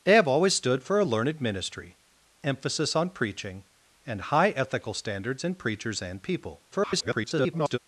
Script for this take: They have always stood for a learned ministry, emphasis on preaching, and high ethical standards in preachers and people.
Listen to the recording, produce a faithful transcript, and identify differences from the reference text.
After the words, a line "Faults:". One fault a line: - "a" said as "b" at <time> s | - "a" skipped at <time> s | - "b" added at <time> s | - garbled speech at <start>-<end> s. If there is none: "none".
They have always stood for a learned ministry, emphasis on preaching, and high ethical standards in preachers and people. [garbled]
Faults:
- garbled speech at 6.7-7.8 s